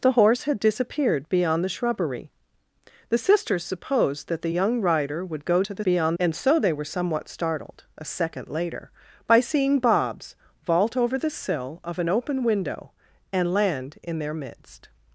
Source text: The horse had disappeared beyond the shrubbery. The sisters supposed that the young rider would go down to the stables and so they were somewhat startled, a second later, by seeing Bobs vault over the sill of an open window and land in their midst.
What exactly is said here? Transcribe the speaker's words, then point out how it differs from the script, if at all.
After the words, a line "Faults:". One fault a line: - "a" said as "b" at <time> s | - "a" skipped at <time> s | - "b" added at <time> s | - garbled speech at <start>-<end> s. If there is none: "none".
The horse had disappeared beyond the shrubbery. The sisters supposed that the young rider would go to the beyond and so they were somewhat startled, a second later, by seeing Bobs vault over the sill of an open window and land in their midst.
Faults:
- "down" skipped at 5.6 s
- "stables" said as "beyond" at 5.8 s